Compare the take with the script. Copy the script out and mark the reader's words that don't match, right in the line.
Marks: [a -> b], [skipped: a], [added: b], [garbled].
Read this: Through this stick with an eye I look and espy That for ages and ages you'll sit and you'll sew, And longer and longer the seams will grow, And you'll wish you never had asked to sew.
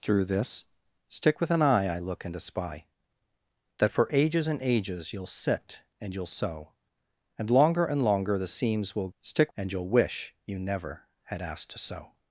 Through this stick with an eye I look and espy That for ages and ages you'll sit and you'll sew, And longer and longer the seams will [grow, -> stick] And you'll wish you never had asked to sew.